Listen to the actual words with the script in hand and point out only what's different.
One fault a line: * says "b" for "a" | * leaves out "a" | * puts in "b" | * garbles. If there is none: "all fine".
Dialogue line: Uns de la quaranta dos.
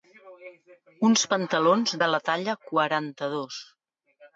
* puts in "pantalons"
* puts in "talla"